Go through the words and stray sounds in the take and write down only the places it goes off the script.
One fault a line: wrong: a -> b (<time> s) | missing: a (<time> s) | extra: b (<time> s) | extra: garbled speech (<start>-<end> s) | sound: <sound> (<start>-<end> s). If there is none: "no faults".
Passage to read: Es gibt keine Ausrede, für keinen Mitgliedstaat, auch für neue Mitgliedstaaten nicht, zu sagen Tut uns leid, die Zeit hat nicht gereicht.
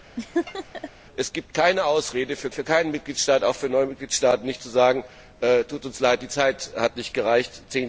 sound: laugh (0.2-0.9 s)
extra: für (2.5 s)